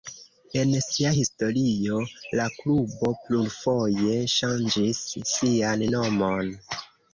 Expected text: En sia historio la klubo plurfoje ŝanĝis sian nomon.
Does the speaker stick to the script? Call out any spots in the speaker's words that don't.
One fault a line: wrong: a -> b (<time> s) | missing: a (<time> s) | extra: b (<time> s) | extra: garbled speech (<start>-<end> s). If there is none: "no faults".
no faults